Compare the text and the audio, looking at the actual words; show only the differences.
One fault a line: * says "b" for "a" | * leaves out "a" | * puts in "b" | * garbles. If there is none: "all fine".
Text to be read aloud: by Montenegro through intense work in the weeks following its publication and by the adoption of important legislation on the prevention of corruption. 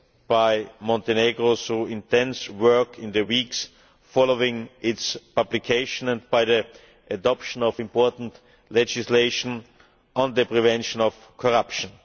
all fine